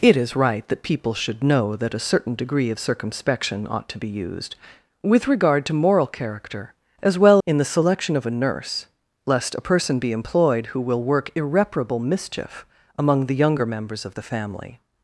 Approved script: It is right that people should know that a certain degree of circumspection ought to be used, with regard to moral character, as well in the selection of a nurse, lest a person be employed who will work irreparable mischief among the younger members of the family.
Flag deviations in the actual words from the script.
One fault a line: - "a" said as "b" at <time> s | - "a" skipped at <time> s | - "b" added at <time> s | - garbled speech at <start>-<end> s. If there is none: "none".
none